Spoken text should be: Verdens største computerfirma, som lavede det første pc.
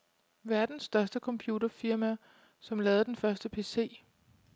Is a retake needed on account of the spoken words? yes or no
yes